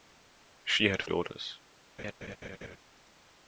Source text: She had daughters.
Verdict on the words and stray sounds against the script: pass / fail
fail